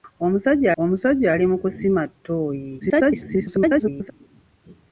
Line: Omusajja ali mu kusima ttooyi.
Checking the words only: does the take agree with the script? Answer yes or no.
no